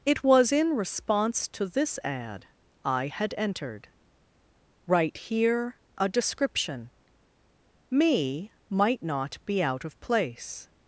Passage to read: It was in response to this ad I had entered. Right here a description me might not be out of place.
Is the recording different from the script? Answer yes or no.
no